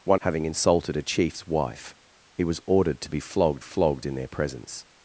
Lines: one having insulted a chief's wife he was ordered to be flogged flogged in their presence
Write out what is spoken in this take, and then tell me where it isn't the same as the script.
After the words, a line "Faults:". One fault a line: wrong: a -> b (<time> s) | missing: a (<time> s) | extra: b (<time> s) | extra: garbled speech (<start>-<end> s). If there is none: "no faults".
one having insulted a chief's wife he was ordered to be flogged flogged in their presence
Faults:
no faults